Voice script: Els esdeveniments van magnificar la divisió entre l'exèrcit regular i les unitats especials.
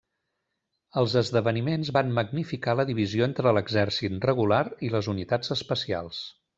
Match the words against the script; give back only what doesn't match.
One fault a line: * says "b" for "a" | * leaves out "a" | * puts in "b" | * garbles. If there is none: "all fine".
all fine